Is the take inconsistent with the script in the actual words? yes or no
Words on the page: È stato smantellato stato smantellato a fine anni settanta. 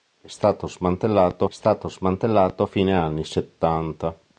no